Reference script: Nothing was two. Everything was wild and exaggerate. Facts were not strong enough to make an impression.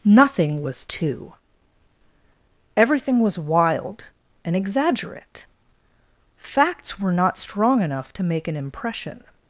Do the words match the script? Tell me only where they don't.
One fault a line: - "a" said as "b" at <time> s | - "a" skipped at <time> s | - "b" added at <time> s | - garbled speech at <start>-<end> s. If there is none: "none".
none